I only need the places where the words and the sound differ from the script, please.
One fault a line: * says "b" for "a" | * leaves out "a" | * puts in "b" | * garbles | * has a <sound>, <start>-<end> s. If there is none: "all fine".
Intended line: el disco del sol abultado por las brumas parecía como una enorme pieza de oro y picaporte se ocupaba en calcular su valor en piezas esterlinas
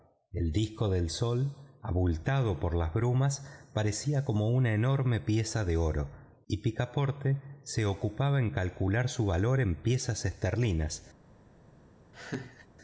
* has a laugh, 12.1-12.7 s